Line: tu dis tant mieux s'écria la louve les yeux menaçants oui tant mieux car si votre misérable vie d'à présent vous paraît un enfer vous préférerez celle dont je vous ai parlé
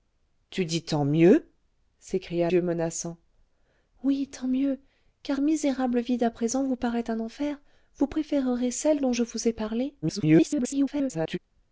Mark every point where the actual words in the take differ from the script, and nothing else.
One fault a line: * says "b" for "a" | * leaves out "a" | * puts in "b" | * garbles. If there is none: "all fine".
* leaves out "la louve les"
* leaves out "si votre"
* garbles